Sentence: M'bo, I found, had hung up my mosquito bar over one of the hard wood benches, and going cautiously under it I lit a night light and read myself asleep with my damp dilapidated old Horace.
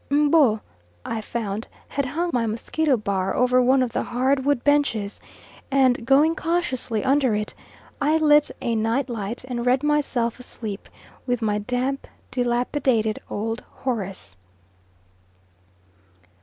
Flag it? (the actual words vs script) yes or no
yes